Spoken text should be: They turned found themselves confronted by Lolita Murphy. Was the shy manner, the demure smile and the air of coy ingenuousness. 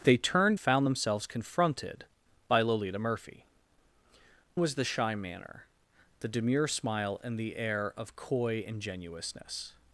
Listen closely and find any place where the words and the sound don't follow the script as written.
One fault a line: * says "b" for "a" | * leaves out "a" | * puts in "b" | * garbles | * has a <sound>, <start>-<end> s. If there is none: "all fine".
all fine